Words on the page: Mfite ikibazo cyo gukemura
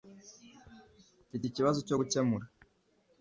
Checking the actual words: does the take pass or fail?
pass